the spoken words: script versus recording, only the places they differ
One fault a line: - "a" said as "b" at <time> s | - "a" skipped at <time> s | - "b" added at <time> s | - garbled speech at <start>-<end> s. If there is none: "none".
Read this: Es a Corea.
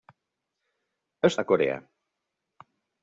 none